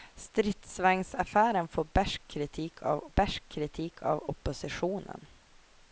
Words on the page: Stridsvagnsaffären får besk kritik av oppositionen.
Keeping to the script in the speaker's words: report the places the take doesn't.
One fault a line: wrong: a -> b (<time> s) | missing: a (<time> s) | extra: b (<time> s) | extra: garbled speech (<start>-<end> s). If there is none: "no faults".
extra: besk kritik av (3.1 s)